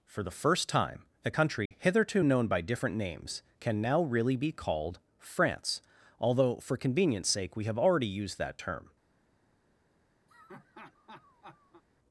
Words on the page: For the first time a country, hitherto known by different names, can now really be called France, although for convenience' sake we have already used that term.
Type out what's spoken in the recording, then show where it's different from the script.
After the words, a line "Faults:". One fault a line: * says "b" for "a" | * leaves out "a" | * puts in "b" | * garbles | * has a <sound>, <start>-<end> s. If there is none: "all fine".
For the first time a country, hitherto known by different names, can now really be called France, although for convenience' sake we have already used that term.
Faults:
* has a dropout, 1.7-1.7 s
* has a laugh, 10.3-11.8 s